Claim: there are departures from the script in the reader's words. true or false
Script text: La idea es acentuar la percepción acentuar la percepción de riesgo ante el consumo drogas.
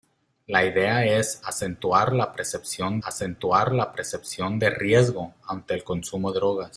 false